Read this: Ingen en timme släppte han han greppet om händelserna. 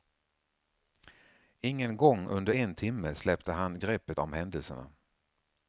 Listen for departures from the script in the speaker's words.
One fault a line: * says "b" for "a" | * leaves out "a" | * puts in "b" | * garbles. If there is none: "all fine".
* puts in "gång under"
* leaves out "han"